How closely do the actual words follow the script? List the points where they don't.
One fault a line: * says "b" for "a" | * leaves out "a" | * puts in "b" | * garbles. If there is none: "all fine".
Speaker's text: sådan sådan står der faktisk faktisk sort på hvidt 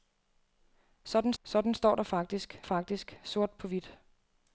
all fine